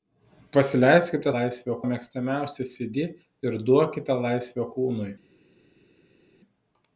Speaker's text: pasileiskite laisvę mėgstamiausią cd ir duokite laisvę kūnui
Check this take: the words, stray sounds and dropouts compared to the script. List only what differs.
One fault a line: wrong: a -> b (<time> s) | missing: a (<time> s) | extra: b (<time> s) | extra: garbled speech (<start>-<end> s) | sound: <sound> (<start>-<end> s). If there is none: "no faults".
no faults